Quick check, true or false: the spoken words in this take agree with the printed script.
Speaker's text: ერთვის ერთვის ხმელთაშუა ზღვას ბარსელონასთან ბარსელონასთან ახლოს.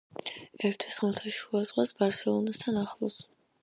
false